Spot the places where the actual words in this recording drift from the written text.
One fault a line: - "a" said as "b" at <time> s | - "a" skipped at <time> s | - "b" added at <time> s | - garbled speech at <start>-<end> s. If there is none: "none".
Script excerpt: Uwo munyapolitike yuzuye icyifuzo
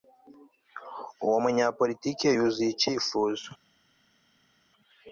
none